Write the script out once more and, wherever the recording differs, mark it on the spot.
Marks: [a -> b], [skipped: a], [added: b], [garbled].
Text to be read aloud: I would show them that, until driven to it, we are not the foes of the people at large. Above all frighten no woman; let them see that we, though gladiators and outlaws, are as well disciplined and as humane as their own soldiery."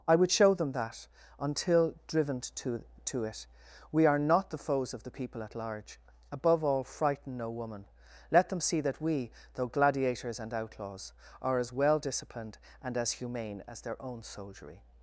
I would show them that, until driven to [added: to] it, we are not the foes of the people at large. Above all frighten no woman; let them see that we, though gladiators and outlaws, are as well disciplined and as humane as their own soldiery."